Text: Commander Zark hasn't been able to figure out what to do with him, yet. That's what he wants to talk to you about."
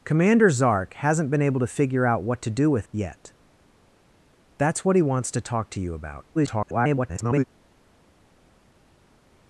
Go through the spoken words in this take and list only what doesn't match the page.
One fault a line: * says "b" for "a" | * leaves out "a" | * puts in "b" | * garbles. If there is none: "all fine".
* leaves out "him"
* garbles